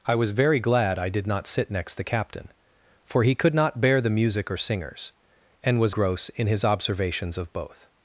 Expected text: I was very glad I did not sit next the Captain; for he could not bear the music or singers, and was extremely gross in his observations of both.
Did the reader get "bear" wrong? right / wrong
right